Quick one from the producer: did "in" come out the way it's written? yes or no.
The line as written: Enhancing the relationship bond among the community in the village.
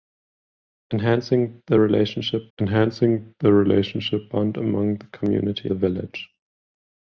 no